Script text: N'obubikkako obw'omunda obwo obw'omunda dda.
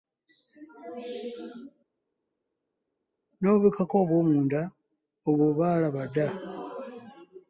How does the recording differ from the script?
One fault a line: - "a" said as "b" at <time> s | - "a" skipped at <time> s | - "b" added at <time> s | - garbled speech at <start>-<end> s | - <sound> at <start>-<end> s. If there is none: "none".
- "obw'omunda" said as "baalaba" at 5.6 s